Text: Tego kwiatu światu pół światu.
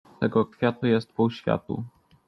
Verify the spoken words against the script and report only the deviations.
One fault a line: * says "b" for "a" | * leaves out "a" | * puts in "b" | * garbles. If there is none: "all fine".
* says "jest" for "światu"